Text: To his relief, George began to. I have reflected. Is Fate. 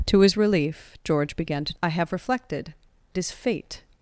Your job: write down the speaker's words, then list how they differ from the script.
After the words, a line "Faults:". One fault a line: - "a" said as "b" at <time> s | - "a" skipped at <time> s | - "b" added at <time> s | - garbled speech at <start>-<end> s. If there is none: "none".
To his relief, George began to. I have reflected. Is Fate.
Faults:
none